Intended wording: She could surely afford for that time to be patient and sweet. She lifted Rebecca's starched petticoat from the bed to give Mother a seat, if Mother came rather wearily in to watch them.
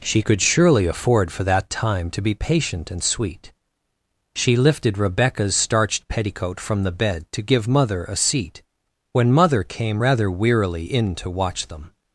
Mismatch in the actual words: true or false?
true